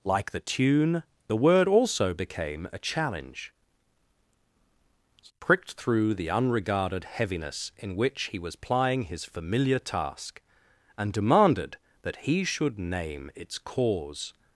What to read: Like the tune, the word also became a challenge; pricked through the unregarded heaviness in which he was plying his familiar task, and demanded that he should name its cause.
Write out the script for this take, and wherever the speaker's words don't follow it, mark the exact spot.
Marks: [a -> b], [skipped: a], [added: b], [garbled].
Like the tune, the word also became a challenge; pricked through the unregarded heaviness in which he was plying his familiar task, and demanded that he should name its cause.